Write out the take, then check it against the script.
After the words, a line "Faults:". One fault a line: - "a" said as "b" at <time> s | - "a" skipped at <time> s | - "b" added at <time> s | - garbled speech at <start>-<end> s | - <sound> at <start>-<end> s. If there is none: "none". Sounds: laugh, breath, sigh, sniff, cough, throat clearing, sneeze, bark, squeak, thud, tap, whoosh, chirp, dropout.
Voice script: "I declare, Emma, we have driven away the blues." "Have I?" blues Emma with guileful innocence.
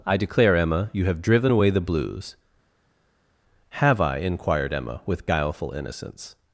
"I declare, Emma, you have driven away the blues." "Have I?" inquired Emma with guileful innocence.
Faults:
- "we" said as "you" at 0.9 s
- "blues" said as "inquired" at 4.2 s